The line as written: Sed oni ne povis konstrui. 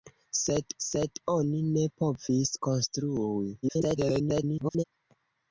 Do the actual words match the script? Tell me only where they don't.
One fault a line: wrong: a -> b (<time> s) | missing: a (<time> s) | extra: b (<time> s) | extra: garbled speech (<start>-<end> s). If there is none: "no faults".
extra: sed (0.8 s)
extra: garbled speech (3.6-4.8 s)